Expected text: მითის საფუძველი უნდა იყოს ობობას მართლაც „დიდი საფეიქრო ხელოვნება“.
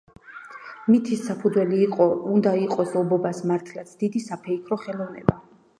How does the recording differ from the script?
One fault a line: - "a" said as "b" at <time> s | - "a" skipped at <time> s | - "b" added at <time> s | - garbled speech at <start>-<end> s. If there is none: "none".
none